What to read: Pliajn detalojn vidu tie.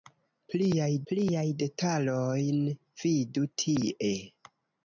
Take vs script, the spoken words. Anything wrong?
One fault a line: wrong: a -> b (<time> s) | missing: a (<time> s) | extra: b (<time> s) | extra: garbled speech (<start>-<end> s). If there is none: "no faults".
extra: pliajn (1.1 s)